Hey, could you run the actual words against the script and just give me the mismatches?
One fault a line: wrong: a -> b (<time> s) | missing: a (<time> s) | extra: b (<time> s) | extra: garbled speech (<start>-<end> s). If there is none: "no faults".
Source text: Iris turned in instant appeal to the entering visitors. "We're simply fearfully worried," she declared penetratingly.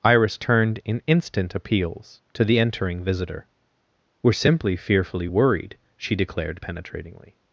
wrong: appeal -> appeals (1.5 s)
wrong: visitors -> visitor (3.0 s)